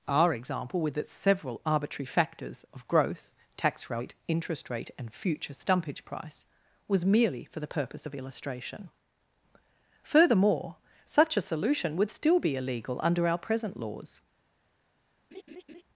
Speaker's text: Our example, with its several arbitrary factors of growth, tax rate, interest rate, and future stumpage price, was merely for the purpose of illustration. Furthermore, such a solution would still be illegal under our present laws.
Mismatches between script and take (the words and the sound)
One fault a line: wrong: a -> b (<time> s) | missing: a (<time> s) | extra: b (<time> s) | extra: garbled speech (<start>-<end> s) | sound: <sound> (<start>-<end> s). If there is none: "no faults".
sound: laugh (15.3-15.8 s)